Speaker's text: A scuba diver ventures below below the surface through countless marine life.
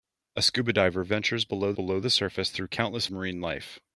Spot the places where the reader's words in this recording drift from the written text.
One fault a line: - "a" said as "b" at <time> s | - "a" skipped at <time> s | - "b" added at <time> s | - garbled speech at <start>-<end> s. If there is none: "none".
none